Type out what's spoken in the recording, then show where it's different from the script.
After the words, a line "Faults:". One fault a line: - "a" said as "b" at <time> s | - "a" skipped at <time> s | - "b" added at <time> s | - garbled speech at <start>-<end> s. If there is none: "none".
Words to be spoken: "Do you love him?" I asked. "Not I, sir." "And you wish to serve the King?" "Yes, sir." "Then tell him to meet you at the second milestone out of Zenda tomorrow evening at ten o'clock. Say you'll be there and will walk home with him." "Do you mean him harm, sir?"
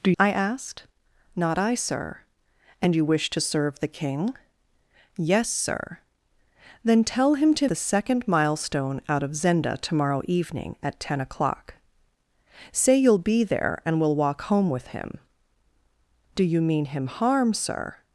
"Do?" I asked. "Not I, sir." "And you wish to serve the King?" "Yes, sir." "Then tell him to the second milestone out of Zenda tomorrow evening at ten o'clock. Say you'll be there and will walk home with him." "Do you mean him harm, sir?"
Faults:
- "you love him" skipped at 0.1 s
- "meet you at" skipped at 7.7 s